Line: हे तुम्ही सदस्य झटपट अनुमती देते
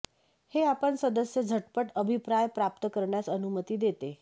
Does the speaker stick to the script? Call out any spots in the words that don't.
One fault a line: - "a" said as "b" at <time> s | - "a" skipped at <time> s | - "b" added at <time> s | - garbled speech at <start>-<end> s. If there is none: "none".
- "तुम्ही" said as "आपण" at 0.6 s
- "अभिप्राय प्राप्त करण्यास" added at 1.9 s